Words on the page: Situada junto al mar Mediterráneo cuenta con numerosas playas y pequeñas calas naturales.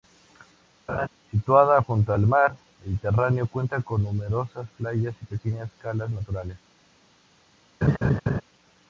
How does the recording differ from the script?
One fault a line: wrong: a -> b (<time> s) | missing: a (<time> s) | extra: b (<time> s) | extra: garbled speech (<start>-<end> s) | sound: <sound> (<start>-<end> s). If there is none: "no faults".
sound: laugh (0.9-1.1 s)
sound: laugh (7.8-8.4 s)